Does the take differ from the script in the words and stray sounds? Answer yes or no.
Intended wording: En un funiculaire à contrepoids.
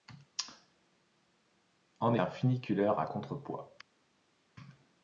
no